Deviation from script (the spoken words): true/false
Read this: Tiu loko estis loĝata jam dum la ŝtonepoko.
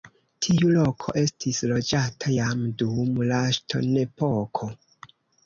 false